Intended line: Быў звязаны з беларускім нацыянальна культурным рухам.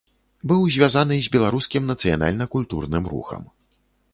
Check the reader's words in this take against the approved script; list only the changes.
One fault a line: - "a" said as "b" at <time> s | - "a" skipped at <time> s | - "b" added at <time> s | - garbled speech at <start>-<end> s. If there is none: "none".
none